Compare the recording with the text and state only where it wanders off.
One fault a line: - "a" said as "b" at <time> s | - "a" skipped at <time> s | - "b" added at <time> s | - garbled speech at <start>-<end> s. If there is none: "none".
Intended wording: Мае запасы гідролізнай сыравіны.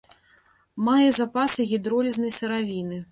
none